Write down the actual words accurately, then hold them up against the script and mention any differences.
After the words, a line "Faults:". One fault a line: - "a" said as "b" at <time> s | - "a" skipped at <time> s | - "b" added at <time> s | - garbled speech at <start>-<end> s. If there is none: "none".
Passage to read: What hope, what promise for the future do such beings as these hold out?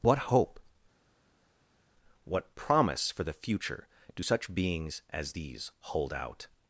What hope, what promise for the future do such beings as these hold out?
Faults:
none